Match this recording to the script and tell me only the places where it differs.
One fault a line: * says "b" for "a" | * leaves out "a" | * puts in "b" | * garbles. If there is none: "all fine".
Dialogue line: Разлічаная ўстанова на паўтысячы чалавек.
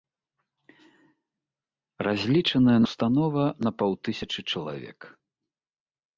all fine